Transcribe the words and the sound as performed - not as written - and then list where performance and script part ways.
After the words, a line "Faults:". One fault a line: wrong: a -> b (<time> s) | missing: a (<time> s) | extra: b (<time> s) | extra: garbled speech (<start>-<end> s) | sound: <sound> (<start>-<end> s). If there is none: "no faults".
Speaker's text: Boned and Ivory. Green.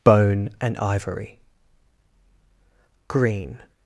Bone and Ivory. Green.
Faults:
wrong: Boned -> Bone (0.0 s)